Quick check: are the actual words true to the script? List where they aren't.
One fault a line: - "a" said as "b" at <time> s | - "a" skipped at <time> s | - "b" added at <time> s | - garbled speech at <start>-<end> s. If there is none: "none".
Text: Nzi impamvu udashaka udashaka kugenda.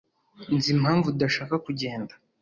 - "udashaka" skipped at 1.6 s